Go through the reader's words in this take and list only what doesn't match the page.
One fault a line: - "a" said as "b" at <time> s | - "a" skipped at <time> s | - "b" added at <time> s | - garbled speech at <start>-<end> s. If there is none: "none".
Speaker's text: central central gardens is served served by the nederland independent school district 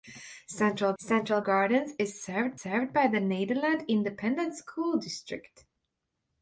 none